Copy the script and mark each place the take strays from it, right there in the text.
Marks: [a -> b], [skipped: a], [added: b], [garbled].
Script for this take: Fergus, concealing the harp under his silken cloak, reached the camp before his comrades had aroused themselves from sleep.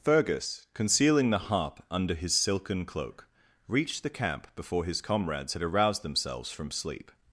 Fergus, concealing the harp under his silken cloak, reached the camp before his comrades had aroused themselves from sleep.